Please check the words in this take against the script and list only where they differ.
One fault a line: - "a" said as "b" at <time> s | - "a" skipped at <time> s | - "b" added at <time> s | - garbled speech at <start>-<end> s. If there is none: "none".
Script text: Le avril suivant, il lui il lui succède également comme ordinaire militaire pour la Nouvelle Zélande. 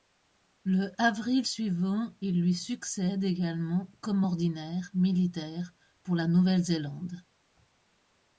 - "il lui" skipped at 2.5 s